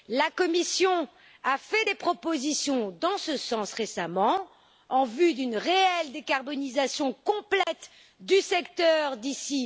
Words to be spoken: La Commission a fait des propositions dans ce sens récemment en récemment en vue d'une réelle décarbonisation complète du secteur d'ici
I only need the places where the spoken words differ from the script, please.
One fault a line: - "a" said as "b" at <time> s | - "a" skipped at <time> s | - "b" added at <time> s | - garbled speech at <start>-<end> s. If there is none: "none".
- "récemment en" skipped at 5.0 s